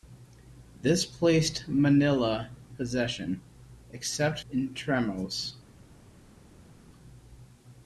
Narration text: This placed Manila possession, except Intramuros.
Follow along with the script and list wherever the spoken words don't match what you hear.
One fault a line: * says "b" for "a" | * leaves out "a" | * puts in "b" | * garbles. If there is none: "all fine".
all fine